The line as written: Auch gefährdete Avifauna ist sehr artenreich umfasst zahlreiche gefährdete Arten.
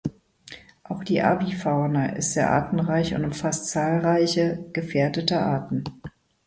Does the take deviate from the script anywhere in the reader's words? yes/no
yes